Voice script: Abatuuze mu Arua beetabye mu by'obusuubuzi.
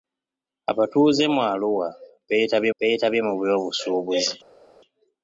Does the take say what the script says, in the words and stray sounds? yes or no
no